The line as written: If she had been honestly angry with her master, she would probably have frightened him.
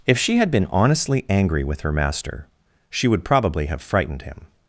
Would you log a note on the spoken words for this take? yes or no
no